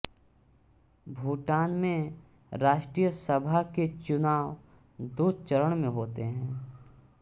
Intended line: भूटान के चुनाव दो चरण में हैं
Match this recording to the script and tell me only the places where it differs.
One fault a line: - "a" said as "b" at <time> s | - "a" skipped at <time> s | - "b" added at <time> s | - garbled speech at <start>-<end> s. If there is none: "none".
- "में राष्ट्रीय सभा" added at 1.8 s
- "होते" added at 5.9 s